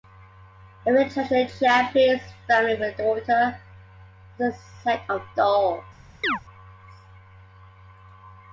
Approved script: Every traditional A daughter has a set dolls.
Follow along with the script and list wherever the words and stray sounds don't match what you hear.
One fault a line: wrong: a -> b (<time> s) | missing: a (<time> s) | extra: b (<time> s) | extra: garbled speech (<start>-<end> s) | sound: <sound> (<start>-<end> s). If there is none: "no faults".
extra: Japanese family with (1.6 s)
extra: of (5.1 s)
sound: chirp (6.2-6.4 s)